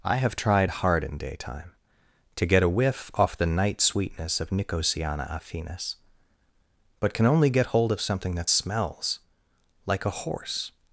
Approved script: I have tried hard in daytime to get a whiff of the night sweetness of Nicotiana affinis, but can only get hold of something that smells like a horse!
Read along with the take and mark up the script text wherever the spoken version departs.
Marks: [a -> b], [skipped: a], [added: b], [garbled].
I have tried hard in daytime to get a whiff [of -> off] the night sweetness of Nicotiana affinis, but can only get hold of something that smells like a horse!